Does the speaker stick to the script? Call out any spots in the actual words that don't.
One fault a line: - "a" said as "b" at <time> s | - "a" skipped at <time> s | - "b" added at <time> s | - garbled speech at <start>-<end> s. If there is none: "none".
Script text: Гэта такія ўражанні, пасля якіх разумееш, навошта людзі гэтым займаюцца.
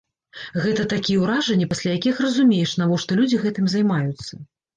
none